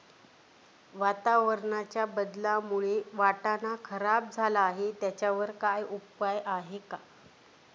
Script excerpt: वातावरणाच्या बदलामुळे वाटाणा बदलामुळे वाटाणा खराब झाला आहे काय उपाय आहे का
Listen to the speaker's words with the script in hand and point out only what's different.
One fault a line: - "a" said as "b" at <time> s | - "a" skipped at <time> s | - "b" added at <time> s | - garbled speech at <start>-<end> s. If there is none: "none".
- "बदलामुळे वाटाणा" skipped at 3.8 s
- "त्याच्यावर" added at 5.0 s